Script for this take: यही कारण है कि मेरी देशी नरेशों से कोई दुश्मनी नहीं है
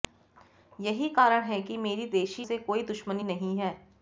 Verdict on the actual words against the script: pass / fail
fail